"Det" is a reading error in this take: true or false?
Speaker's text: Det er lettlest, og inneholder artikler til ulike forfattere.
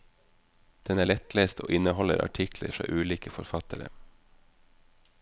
true